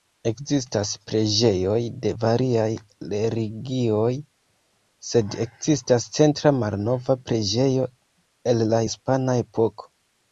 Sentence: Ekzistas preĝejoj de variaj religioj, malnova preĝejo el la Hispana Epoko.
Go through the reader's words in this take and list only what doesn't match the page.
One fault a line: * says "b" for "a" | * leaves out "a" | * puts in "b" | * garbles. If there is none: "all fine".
* puts in "sed ekzistas centra"